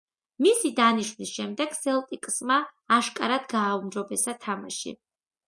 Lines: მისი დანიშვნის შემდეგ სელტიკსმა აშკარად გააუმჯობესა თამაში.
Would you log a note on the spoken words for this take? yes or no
no